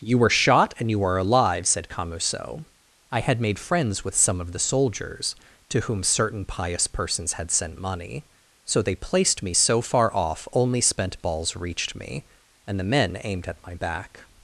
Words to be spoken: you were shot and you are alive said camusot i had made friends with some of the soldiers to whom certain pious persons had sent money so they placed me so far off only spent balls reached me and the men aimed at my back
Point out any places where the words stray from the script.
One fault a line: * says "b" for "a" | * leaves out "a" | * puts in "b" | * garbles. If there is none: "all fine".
all fine